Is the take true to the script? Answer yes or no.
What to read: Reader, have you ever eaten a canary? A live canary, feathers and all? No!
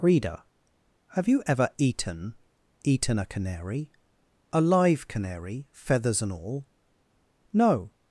no